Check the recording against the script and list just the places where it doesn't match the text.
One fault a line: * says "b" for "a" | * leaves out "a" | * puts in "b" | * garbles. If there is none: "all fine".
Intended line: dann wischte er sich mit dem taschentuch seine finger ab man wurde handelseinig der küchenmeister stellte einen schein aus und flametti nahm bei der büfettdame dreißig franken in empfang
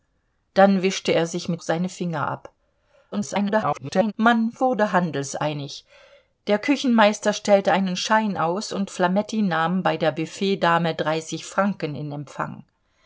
* leaves out "dem taschentuch"
* garbles